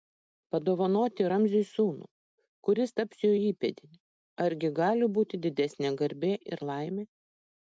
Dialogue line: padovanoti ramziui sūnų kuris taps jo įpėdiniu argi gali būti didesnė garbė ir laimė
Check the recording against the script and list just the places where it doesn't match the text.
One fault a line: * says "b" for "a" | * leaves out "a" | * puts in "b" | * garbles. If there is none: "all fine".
all fine